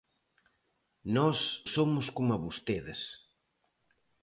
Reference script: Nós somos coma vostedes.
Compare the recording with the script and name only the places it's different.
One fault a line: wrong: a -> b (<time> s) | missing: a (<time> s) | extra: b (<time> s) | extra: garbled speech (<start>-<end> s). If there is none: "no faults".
no faults